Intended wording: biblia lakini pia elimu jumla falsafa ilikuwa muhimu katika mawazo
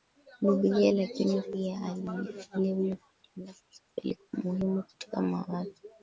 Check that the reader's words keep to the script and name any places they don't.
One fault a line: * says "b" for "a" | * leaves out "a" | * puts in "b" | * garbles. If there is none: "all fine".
* puts in "kwa"